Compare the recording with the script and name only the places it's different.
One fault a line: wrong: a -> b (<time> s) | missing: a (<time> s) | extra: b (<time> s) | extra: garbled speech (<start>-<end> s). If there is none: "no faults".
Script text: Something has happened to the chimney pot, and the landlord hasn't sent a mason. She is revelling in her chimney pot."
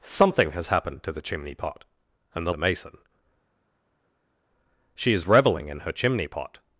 missing: landlord hasn't sent (2.5 s)